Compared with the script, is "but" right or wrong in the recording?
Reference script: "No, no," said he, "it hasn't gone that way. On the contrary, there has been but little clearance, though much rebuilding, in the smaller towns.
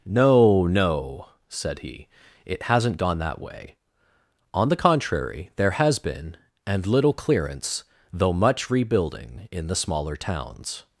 wrong